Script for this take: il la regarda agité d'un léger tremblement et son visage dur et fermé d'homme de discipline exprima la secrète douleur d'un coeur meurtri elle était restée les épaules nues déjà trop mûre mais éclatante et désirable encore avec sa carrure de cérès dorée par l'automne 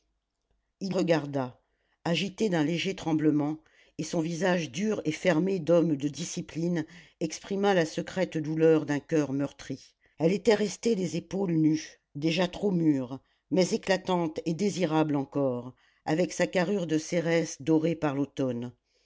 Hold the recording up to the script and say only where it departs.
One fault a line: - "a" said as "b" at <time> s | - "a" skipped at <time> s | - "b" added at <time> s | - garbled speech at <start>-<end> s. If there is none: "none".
- "la" skipped at 0.9 s